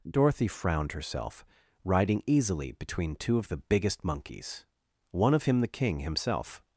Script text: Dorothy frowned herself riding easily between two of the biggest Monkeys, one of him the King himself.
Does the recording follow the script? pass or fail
pass